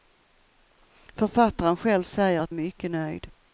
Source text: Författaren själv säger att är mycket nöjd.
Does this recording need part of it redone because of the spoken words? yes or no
no